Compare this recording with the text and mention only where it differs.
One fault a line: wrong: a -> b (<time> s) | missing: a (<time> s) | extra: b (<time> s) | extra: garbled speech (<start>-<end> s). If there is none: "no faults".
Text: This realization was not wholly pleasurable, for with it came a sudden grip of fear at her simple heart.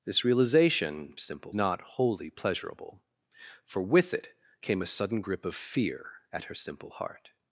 wrong: was -> simple (1.2 s)